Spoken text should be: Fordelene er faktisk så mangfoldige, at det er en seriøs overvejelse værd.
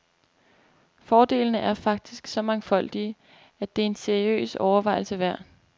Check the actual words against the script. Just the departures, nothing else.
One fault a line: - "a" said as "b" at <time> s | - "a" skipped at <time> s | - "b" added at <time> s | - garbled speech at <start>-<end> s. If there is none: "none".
none